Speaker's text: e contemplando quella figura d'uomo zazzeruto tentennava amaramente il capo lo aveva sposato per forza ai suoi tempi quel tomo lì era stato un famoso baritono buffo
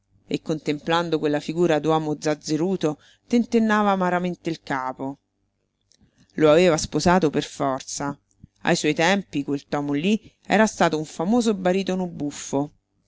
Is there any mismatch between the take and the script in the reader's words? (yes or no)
no